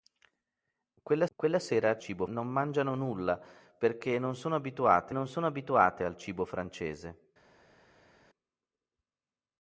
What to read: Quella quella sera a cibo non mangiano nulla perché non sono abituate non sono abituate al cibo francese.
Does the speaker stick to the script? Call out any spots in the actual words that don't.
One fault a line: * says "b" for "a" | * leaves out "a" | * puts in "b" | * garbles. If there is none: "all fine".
all fine